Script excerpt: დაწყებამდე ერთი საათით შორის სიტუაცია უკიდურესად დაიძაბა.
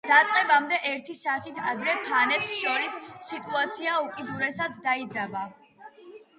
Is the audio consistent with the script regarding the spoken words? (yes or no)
no